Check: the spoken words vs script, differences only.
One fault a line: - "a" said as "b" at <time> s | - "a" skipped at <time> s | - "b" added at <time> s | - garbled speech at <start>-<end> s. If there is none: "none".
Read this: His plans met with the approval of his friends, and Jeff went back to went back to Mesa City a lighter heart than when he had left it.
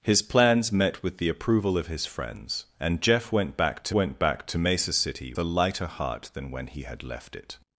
none